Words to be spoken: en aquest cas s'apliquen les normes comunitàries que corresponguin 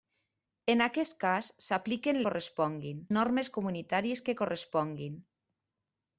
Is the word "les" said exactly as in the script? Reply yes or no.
no